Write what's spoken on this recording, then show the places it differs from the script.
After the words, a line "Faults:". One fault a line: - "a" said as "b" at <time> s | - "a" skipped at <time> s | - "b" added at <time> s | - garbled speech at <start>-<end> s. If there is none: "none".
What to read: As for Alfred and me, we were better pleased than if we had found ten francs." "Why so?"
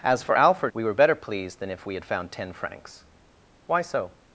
As for Alfred we were better pleased than if we had found ten francs." "Why so?"
Faults:
- "and me" skipped at 0.7 s